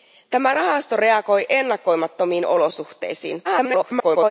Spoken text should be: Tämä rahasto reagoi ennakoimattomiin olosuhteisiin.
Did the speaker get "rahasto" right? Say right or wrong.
right